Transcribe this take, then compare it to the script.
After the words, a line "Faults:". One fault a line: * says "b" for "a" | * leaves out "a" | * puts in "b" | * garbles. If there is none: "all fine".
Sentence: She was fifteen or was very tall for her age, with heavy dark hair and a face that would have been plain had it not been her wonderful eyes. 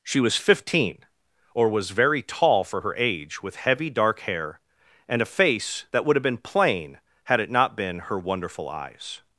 She was fifteen or was very tall for her age, with heavy dark hair and a face that would have been plain had it not been her wonderful eyes.
Faults:
all fine